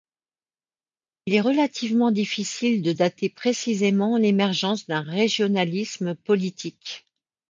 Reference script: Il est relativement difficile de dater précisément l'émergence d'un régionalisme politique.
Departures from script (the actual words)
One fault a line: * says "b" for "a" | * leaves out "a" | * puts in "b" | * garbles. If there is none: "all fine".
all fine